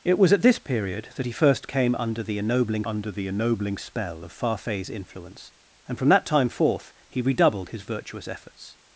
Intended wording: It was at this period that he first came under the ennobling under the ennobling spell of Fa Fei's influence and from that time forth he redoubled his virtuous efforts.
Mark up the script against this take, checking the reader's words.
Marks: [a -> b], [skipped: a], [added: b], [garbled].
It was at this period that he first came under the ennobling under the ennobling spell of Fa Fei's influence and from that time forth he redoubled his virtuous efforts.